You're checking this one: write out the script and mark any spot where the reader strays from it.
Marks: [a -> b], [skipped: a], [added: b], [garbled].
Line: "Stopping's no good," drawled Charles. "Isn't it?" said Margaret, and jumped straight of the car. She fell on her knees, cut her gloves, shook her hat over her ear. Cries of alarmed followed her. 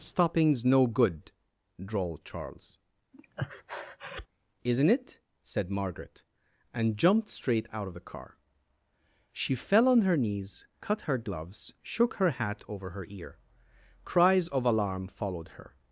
"Stopping's no good," drawled Charles. "Isn't it?" said Margaret, and jumped straight [added: out] of the car. She fell on her knees, cut her gloves, shook her hat over her ear. Cries of [alarmed -> alarm] followed her.